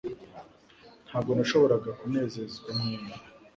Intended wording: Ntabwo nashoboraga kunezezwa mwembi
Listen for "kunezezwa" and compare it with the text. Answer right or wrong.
right